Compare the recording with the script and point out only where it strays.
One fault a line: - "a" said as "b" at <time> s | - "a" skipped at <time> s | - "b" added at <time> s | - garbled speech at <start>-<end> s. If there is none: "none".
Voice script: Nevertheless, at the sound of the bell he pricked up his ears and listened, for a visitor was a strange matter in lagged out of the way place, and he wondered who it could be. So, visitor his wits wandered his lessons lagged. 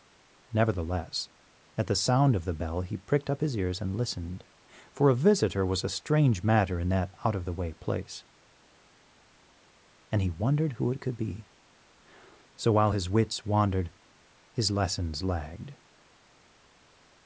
- "lagged" said as "that" at 6.9 s
- "visitor" said as "while" at 12.7 s